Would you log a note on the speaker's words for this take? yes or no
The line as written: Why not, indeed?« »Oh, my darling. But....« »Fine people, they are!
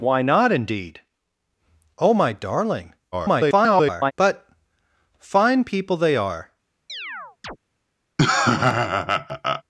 yes